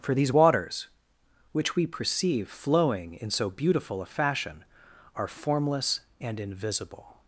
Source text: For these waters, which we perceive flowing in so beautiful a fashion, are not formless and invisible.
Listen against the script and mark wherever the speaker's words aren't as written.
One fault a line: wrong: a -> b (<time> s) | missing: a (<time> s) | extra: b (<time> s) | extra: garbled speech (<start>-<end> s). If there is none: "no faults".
missing: not (5.3 s)